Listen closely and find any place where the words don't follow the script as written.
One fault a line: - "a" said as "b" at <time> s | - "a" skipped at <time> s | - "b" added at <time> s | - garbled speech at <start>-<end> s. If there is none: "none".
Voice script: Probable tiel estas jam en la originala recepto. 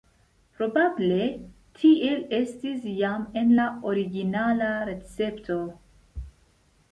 - "estas" said as "estis" at 2.4 s